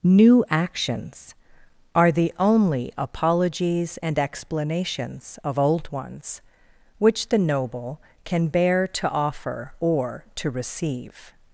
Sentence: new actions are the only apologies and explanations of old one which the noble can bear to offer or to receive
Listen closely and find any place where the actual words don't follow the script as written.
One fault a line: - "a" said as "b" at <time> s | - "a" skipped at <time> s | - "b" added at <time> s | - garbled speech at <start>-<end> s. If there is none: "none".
- "one" said as "ones" at 5.9 s